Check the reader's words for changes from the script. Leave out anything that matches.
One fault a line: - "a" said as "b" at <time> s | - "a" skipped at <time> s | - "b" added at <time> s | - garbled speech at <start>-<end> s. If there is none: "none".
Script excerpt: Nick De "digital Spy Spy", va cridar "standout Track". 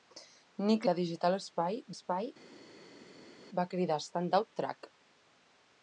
none